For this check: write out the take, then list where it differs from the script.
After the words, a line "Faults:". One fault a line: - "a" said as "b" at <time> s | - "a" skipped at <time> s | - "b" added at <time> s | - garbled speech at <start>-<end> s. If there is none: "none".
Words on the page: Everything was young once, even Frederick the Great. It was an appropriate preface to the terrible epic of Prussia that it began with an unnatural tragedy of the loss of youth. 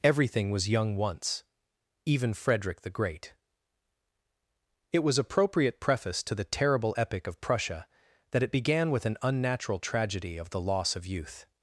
Everything was young once, even Frederick the Great. It was appropriate preface to the terrible epic of Prussia that it began with an unnatural tragedy of the loss of youth.
Faults:
- "an" skipped at 5.2 s